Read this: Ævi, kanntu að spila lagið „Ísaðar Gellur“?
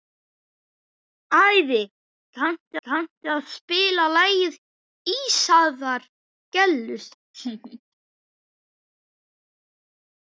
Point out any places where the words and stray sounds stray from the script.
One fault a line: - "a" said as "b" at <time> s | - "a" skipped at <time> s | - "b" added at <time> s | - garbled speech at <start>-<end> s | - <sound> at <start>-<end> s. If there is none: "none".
- "kanntu" added at 2.9 s
- laugh at 7.3-7.8 s